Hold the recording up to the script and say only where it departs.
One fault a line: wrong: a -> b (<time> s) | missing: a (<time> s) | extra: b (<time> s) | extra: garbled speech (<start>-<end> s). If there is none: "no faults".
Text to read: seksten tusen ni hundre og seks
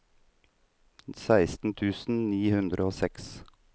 no faults